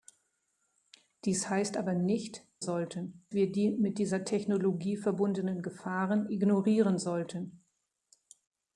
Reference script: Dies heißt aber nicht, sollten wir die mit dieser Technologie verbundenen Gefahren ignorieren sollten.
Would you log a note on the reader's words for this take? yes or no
no